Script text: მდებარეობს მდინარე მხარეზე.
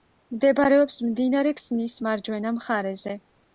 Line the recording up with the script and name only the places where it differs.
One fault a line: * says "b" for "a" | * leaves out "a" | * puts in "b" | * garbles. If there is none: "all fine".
* puts in "ქსნის მარჯვენა"